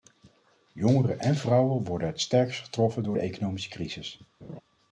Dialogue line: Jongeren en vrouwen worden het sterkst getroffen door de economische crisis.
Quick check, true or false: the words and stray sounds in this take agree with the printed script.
false